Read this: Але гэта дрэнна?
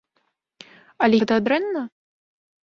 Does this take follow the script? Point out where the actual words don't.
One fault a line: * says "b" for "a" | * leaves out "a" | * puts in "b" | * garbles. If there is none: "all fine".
all fine